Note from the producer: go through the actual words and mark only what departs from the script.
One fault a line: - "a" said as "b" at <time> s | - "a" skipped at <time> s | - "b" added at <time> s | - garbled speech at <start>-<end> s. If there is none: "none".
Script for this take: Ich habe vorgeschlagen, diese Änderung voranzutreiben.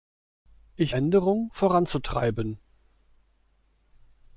- "habe vorgeschlagen diese" skipped at 0.9 s